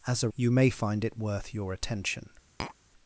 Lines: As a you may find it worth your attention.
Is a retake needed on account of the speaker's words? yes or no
no